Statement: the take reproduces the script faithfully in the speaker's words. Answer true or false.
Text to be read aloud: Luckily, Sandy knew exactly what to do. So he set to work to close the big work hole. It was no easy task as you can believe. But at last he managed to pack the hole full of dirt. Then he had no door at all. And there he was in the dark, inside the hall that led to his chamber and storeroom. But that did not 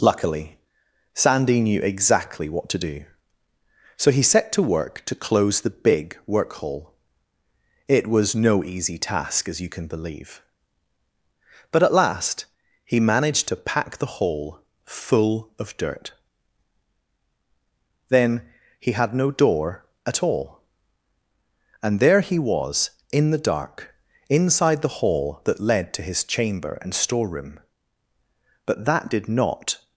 true